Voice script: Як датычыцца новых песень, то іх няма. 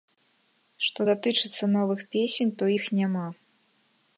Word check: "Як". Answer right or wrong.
wrong